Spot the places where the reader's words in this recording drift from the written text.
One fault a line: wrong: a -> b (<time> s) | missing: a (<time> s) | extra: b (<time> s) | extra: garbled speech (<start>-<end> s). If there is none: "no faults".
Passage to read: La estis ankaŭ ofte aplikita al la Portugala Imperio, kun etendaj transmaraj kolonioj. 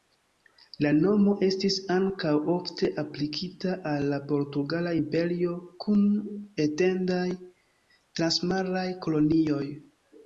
extra: nomo (1.0 s)